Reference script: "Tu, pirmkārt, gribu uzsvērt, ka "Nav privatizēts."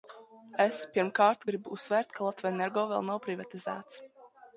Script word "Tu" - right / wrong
wrong